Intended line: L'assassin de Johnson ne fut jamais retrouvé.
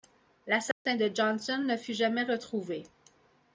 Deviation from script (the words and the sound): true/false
true